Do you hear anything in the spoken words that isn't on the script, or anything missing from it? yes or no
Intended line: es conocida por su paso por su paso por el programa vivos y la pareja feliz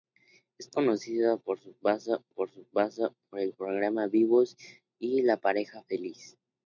no